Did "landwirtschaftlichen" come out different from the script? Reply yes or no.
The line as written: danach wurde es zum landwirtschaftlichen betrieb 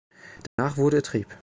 yes